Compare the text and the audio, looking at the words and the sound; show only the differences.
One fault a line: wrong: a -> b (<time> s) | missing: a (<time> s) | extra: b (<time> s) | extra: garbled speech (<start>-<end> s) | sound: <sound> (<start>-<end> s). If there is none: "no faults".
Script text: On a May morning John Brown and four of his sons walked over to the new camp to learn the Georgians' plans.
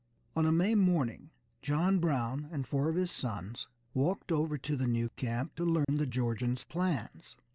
sound: dropout (5.8-5.9 s)